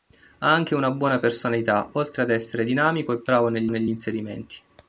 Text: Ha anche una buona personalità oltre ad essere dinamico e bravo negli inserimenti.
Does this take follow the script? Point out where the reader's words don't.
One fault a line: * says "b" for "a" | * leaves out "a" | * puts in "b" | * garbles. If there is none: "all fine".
* puts in "negli"